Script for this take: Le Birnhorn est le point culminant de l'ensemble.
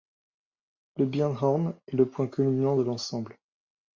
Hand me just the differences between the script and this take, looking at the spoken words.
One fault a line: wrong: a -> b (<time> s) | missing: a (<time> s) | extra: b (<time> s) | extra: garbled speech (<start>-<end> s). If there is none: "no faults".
no faults